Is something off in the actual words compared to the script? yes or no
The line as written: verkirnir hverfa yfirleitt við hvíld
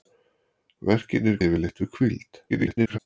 yes